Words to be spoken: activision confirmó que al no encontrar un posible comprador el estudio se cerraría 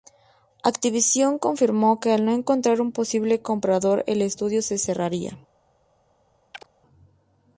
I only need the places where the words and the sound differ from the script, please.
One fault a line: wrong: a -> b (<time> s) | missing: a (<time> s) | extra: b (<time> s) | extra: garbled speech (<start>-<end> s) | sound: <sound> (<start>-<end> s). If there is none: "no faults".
sound: chirp (6.5-6.7 s)